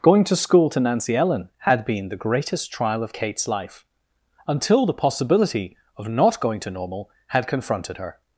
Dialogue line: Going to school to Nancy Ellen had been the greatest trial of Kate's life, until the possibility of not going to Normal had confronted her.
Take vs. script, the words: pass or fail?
pass